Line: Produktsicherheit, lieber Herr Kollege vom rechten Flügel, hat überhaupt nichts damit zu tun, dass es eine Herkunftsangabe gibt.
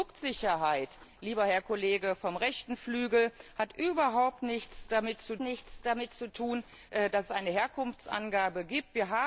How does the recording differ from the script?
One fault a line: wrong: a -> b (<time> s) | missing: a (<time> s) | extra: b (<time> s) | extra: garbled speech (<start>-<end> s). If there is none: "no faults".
extra: nichts damit zu (5.4 s)